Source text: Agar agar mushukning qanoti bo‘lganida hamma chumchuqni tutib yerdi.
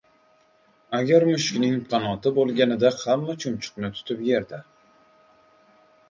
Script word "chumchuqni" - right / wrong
right